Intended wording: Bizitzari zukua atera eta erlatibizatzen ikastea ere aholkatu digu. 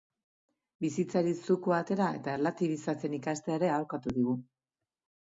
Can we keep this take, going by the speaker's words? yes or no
yes